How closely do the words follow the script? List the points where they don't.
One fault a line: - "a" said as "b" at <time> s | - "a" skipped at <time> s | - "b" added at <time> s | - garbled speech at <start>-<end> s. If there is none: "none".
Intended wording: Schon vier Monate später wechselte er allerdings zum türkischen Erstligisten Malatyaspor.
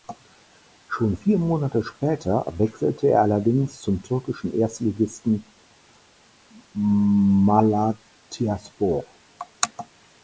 none